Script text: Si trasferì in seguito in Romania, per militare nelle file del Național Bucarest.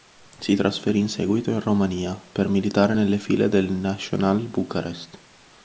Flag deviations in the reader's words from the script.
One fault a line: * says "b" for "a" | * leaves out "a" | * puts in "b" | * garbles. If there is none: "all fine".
all fine